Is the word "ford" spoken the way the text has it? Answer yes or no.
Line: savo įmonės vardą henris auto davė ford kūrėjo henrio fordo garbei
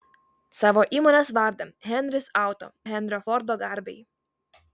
no